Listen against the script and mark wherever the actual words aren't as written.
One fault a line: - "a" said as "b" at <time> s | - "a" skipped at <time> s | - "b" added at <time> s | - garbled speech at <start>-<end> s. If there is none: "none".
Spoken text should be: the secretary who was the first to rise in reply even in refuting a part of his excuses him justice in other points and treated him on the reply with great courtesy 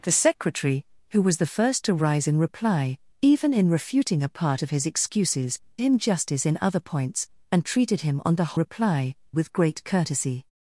none